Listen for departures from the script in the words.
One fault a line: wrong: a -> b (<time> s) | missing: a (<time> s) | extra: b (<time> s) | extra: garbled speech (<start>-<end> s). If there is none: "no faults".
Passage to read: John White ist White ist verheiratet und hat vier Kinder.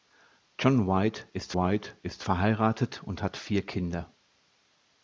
no faults